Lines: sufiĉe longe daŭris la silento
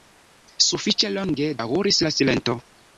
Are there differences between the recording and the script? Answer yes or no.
no